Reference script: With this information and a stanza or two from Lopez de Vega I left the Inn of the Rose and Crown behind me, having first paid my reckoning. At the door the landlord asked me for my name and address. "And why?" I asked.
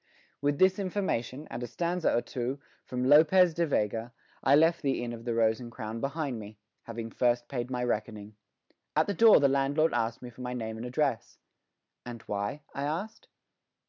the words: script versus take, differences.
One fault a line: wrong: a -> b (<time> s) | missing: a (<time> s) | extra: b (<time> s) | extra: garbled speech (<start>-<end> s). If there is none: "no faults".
no faults